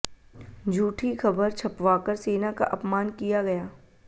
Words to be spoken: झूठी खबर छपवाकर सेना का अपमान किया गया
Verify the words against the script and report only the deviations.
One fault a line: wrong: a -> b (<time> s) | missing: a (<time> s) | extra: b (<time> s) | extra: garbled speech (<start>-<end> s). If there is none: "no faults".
no faults